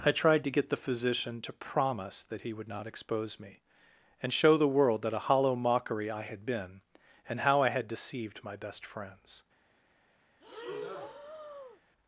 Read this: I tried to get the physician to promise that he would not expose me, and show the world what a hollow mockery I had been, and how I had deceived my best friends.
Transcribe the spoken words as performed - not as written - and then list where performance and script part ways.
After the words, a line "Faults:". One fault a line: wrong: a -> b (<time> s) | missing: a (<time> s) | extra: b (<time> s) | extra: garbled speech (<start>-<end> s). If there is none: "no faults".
I tried to get the physician to promise that he would not expose me, and show the world that a hollow mockery I had been, and how I had deceived my best friends.
Faults:
wrong: what -> that (5.0 s)